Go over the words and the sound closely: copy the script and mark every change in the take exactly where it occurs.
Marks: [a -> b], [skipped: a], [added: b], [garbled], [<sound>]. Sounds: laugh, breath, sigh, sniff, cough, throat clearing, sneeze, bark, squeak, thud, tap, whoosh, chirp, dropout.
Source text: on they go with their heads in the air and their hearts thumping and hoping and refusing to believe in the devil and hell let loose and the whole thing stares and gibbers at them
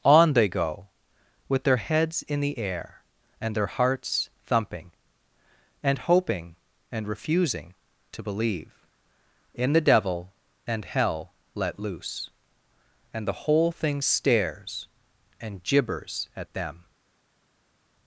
on they go with their heads in the air and their hearts thumping and hoping and refusing to believe in the devil and hell let loose and the whole thing stares and gibbers at them